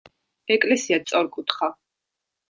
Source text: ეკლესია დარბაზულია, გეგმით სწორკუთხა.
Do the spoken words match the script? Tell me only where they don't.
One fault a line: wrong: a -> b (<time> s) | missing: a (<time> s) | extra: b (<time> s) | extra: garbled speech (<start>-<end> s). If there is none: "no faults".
missing: დარბაზულია გეგმით (1.0 s)